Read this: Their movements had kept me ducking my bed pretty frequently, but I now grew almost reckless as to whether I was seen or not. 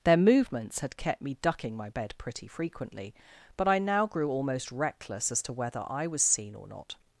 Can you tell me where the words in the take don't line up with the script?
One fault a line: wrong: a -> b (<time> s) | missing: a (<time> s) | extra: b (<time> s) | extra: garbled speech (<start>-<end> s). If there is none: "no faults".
no faults